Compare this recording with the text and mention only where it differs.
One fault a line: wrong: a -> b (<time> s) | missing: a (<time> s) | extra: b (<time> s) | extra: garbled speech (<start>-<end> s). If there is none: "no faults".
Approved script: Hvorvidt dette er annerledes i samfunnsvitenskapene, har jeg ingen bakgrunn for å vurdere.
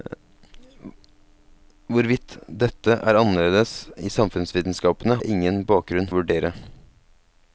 missing: har (5.2 s)
missing: for (6.1 s)